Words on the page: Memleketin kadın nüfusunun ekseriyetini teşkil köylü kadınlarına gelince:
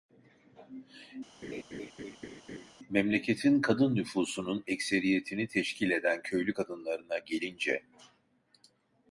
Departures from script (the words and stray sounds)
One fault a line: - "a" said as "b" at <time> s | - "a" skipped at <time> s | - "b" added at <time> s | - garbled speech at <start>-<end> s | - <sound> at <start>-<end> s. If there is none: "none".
- laugh at 1.4-2.7 s
- "eden" added at 5.9 s